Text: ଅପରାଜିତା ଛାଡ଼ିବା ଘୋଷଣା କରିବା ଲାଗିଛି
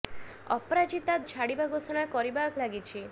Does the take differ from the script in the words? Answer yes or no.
no